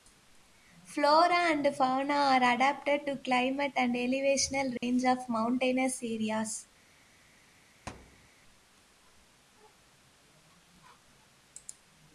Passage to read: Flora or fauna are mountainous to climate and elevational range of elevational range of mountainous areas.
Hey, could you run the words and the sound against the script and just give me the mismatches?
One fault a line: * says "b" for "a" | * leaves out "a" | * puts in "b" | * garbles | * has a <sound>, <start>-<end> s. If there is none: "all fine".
* says "and" for "or"
* says "adapted" for "mountainous"
* has a dropout, 4.8-4.8 s
* leaves out "elevational range of"
* has a thud, 7.9-8.3 s